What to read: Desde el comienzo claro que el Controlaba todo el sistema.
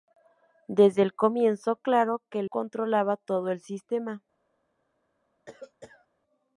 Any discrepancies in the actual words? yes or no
no